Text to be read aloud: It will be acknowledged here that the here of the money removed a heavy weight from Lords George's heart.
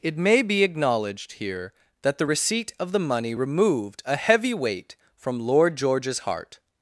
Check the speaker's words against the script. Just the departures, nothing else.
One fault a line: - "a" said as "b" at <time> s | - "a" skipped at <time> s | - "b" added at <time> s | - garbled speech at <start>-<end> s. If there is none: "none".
- "will" said as "may" at 0.2 s
- "here" said as "receipt" at 2.2 s
- "Lords" said as "Lord" at 5.4 s